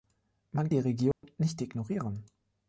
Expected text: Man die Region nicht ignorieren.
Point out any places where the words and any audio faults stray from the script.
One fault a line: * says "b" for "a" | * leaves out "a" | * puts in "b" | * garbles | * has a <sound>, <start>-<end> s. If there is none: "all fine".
* has a dropout, 1.1-1.2 s